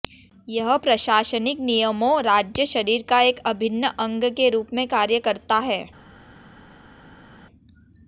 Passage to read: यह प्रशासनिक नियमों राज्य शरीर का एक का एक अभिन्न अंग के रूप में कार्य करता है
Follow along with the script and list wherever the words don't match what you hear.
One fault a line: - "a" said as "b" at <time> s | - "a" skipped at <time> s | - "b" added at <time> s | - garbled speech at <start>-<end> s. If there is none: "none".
- "का एक" skipped at 3.4 s